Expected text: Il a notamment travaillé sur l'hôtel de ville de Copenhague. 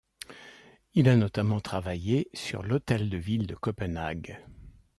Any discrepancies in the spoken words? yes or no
no